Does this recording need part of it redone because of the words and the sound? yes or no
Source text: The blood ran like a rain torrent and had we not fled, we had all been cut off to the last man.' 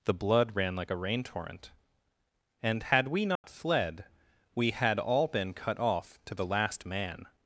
yes